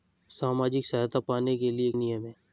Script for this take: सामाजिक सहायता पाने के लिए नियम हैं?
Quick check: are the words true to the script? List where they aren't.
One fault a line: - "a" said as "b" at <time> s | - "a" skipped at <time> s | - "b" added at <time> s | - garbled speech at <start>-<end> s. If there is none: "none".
none